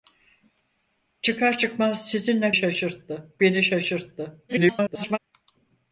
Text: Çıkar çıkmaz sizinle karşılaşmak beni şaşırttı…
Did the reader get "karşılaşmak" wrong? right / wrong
wrong